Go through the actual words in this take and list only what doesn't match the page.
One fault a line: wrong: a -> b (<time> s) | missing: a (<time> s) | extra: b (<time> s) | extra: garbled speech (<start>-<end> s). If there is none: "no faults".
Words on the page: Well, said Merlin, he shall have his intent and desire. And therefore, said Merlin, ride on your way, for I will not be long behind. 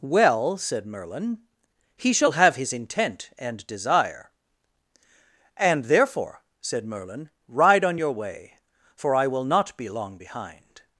no faults